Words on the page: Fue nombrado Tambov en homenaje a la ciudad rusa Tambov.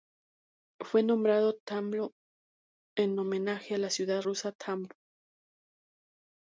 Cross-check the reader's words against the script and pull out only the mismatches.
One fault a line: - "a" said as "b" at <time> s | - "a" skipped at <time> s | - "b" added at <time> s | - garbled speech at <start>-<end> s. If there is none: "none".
none